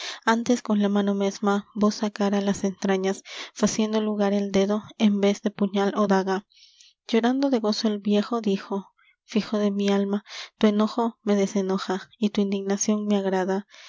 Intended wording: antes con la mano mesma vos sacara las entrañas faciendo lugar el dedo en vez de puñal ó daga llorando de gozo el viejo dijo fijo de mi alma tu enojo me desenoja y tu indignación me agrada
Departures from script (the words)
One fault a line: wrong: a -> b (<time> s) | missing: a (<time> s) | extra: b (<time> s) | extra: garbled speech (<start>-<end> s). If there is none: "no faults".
no faults